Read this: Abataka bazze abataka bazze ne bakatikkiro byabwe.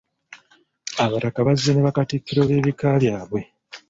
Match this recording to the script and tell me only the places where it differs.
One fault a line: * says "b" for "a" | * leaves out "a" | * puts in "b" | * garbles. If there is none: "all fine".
* leaves out "abataka bazze"
* puts in "b'ebika"